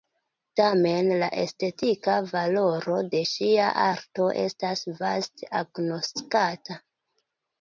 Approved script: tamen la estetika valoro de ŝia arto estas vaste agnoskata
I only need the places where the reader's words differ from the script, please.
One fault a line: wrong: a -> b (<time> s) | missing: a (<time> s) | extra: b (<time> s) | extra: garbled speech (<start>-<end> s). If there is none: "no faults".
no faults